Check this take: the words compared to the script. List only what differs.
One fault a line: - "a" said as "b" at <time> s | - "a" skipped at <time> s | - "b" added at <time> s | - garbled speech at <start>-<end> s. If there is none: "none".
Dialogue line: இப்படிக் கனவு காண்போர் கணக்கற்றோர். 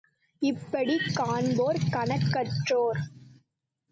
- "கனவு" skipped at 1.1 s